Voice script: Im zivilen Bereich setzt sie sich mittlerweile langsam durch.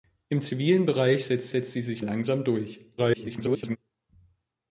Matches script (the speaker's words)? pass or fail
fail